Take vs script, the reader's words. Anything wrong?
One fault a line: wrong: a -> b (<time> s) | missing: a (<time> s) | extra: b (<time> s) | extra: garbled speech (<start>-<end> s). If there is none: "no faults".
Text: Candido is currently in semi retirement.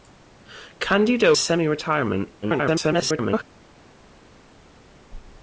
missing: is currently in (1.4 s)
extra: garbled speech (2.4-3.4 s)